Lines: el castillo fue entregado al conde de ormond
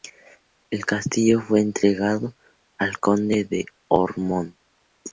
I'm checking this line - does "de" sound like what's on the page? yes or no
yes